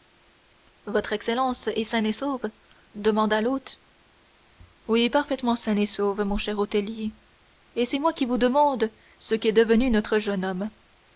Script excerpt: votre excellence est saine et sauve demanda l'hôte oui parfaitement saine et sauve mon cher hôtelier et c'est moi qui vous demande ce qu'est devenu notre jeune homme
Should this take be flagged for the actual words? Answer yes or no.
no